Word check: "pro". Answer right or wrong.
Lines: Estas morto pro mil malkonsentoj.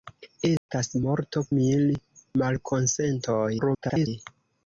wrong